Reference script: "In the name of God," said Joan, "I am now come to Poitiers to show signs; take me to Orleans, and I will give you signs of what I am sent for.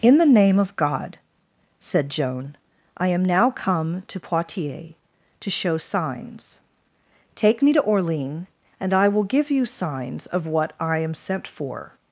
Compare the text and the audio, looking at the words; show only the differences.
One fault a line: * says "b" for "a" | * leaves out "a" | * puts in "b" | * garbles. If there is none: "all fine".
all fine